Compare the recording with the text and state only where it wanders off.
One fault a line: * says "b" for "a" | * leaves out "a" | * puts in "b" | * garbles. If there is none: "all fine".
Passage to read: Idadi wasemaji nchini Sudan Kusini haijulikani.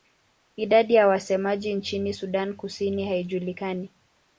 * puts in "ya"